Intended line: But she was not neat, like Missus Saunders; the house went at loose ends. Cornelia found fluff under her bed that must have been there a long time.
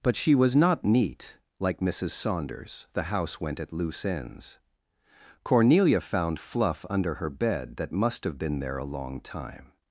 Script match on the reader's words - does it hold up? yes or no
yes